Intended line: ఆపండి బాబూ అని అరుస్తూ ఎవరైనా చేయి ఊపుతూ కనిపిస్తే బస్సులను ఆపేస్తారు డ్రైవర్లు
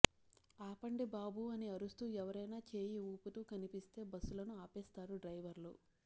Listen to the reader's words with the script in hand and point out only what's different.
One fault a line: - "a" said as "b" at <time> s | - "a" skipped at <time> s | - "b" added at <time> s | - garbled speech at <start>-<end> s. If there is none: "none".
none